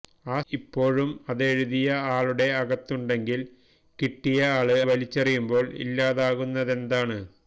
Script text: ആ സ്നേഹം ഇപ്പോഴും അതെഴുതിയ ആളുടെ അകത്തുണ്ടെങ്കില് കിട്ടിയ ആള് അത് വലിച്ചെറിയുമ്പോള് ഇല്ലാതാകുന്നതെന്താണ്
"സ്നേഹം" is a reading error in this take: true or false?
true